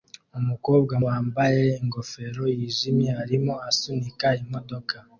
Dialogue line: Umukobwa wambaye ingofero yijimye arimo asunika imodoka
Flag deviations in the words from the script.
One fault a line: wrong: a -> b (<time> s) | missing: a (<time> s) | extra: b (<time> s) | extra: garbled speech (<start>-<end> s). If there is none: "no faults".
no faults